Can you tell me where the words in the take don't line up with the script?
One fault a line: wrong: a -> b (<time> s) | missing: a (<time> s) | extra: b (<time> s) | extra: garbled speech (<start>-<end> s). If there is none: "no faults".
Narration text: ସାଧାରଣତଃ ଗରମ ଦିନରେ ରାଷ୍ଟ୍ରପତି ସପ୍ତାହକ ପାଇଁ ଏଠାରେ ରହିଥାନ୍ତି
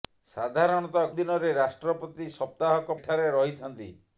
missing: ଗରମ (1.1 s)
missing: ପାଇଁ (3.0 s)